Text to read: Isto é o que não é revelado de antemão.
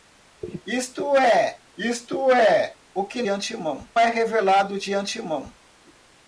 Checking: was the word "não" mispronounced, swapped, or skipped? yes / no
yes